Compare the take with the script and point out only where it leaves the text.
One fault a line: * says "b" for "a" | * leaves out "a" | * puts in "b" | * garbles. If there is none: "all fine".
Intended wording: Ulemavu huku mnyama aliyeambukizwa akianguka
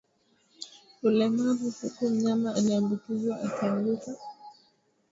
all fine